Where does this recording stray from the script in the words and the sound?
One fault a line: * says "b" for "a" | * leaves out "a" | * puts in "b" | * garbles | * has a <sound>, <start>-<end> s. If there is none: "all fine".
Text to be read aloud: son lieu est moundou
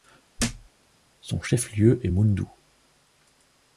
* has a thud, 0.4-0.7 s
* puts in "chef"